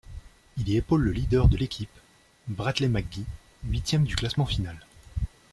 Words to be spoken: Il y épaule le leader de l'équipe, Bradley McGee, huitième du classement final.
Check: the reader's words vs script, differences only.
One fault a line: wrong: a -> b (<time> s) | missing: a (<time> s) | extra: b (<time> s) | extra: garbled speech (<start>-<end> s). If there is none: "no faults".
no faults